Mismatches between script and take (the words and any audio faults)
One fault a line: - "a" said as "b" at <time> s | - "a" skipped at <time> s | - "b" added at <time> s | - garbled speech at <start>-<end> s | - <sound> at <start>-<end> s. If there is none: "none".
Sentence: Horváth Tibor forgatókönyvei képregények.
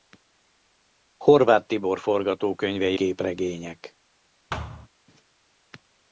- thud at 4.5-4.9 s